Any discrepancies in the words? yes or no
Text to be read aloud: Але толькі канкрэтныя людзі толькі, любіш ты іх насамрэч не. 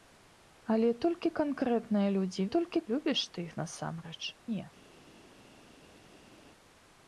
no